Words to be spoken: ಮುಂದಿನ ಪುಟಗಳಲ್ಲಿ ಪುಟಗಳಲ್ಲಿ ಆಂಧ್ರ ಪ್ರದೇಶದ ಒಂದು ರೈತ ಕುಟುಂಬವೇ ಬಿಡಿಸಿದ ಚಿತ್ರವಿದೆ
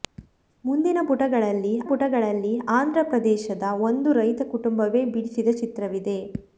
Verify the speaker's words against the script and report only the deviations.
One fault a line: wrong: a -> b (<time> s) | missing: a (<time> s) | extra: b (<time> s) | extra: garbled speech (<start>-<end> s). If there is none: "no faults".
no faults